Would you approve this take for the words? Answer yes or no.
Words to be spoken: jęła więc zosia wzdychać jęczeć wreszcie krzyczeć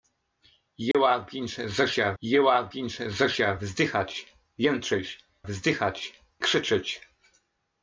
no